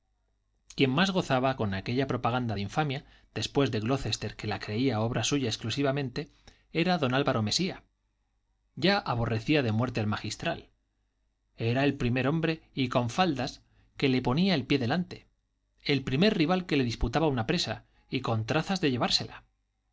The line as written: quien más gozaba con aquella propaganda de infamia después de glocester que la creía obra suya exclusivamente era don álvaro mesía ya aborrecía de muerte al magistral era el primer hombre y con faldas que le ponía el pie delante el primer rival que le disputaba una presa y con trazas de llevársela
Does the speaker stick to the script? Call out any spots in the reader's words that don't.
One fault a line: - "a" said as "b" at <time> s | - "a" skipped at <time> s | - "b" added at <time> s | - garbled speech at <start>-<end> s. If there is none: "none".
none